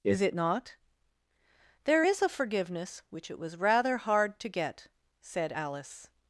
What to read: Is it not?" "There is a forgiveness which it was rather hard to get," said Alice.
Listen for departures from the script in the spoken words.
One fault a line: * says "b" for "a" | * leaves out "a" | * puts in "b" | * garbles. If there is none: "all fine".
all fine